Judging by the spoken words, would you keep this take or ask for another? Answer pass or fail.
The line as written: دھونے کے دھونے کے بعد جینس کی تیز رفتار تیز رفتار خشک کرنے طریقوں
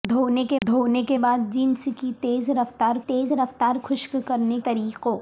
pass